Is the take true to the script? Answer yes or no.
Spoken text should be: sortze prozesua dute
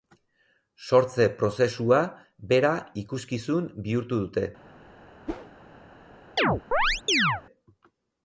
no